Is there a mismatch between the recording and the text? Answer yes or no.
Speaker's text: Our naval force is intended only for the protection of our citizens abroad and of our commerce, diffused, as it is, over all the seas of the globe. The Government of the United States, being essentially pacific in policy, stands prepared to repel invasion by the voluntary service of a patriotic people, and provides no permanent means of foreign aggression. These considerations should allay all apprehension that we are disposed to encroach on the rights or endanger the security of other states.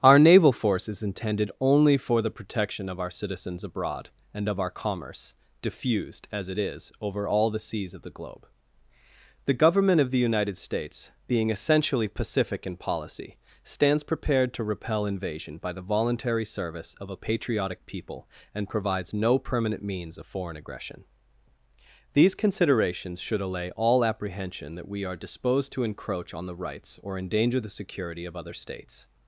no